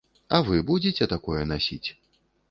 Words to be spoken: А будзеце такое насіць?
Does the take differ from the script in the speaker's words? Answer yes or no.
yes